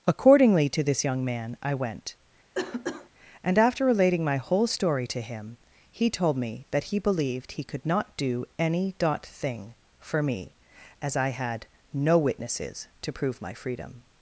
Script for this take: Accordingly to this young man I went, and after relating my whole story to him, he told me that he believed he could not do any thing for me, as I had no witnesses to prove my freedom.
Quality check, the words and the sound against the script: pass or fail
fail